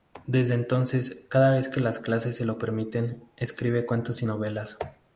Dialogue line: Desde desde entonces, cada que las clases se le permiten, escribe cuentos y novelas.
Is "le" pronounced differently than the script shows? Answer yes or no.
yes